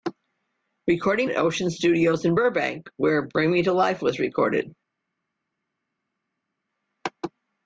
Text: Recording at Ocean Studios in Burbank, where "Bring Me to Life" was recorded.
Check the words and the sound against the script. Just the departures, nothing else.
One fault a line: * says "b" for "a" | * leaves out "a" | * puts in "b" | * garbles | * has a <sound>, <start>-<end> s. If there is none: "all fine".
all fine